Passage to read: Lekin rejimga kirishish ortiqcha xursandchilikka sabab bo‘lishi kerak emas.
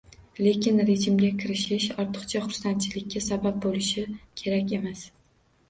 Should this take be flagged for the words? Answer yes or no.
no